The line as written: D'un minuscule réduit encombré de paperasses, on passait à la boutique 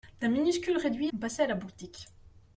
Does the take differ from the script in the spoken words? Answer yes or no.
yes